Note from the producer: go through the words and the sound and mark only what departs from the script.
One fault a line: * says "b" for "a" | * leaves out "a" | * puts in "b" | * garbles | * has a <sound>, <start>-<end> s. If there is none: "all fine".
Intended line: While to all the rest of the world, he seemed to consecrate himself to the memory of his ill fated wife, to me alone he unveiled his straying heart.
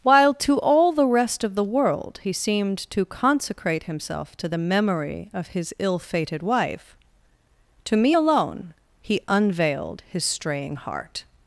all fine